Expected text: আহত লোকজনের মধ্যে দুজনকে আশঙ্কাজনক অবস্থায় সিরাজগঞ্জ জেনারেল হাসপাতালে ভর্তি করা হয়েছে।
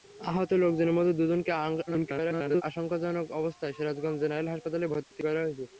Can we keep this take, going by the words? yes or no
no